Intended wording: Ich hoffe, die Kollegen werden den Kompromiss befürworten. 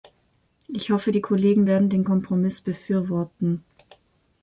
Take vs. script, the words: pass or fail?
pass